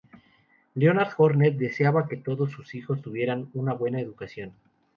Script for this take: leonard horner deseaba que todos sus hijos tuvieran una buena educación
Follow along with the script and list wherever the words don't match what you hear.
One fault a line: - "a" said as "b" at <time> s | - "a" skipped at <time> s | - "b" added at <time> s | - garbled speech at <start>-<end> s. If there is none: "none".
none